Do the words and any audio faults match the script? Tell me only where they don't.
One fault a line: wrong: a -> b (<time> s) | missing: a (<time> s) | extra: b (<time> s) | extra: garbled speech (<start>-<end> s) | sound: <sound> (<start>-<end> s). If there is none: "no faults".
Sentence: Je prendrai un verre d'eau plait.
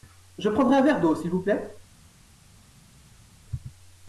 extra: s'il vous (1.1 s)